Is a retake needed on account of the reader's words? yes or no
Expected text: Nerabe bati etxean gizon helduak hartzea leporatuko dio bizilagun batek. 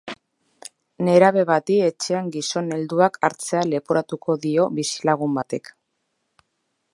no